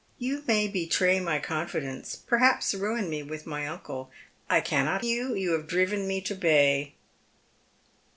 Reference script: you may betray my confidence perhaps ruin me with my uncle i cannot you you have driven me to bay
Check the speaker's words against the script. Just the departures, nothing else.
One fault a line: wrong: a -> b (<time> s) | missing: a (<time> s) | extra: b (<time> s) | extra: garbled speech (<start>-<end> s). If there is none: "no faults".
no faults